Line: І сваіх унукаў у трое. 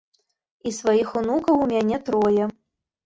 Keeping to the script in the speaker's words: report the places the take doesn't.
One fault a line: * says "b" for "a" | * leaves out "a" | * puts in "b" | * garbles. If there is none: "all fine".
* puts in "мяне"